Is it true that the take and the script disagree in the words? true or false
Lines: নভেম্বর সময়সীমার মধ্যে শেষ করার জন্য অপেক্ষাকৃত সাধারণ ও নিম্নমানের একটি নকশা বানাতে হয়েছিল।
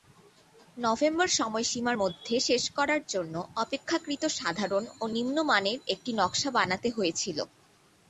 false